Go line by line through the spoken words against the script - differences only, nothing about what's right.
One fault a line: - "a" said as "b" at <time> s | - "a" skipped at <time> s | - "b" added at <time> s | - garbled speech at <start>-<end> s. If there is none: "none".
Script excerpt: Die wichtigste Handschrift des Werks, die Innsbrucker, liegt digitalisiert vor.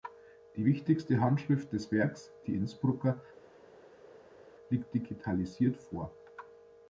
none